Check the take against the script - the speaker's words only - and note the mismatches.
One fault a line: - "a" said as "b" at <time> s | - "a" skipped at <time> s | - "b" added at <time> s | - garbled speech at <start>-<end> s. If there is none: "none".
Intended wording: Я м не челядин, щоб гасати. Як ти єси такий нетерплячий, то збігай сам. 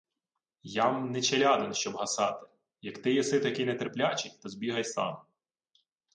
none